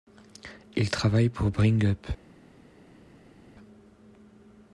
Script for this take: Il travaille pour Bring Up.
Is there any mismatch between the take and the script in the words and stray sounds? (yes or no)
no